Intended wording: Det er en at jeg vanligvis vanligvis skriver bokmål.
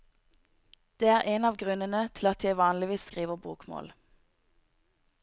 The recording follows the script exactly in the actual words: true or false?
false